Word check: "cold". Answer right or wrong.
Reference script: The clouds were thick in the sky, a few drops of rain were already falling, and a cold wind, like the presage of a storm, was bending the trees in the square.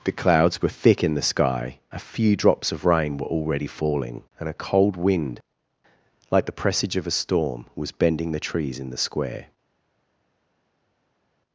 right